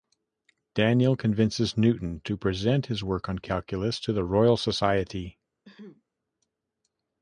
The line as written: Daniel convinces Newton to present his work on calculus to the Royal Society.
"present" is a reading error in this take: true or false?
false